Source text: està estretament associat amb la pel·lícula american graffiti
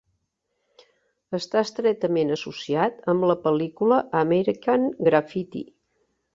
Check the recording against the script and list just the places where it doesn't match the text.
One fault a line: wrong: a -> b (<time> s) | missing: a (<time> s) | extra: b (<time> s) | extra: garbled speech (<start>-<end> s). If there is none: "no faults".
no faults